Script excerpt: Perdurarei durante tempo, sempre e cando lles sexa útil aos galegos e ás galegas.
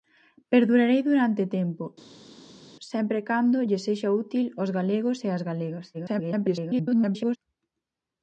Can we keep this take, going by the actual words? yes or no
no